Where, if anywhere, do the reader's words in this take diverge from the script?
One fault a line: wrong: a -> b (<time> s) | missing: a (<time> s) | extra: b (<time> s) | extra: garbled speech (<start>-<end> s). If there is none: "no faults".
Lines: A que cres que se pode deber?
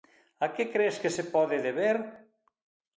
no faults